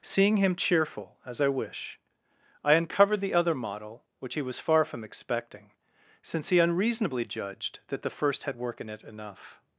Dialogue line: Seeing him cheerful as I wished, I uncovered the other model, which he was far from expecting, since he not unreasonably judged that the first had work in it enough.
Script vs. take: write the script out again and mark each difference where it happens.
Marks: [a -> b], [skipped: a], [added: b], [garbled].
Seeing him cheerful as I [wished, -> wish] I uncovered the other model, which he was far from expecting, since he [skipped: not] unreasonably judged that the first had work in it enough.